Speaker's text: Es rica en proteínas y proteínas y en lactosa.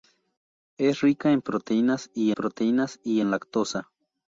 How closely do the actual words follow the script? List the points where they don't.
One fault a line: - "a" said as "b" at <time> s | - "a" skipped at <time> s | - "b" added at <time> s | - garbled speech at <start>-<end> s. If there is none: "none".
none